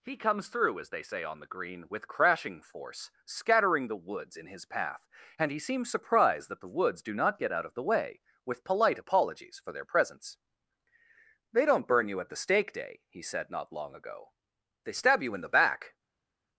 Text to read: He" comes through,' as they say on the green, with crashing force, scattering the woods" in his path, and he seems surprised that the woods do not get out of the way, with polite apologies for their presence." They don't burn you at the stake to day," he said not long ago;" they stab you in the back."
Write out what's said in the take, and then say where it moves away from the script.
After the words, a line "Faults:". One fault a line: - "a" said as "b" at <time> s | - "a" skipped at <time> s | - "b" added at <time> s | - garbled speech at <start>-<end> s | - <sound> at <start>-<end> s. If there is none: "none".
He" comes through,' as they say on the green, with crashing force, scattering the woods" in his path, and he seems surprised that the woods do not get out of the way, with polite apologies for their presence." They don't burn you at the stake day," he said not long ago;" they stab you in the back."
Faults:
- "to" skipped at 12.7 s